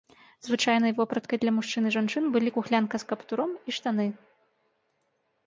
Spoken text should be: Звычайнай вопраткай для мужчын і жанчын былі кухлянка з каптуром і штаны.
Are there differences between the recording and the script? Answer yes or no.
no